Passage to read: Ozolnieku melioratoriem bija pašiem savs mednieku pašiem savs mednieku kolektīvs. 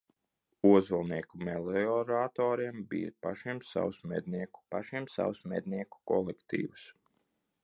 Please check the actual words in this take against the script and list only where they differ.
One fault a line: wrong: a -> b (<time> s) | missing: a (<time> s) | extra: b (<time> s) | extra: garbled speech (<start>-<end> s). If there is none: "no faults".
no faults